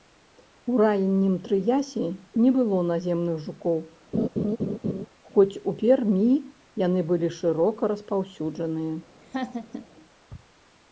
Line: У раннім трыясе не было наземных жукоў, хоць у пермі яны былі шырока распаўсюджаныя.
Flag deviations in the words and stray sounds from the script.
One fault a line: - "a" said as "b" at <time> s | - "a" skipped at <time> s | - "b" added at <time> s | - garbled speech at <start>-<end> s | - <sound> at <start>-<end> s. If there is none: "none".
- laugh at 4.1-5.1 s
- laugh at 9.2-9.9 s